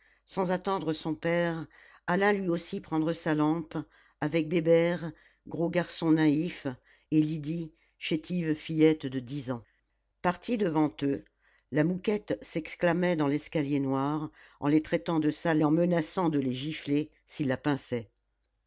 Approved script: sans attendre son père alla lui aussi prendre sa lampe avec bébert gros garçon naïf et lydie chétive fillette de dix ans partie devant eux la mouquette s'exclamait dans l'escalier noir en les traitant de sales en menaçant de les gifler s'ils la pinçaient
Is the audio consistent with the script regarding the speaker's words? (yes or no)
yes